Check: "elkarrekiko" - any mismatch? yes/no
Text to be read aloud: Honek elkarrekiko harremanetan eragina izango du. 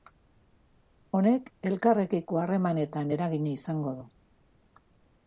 no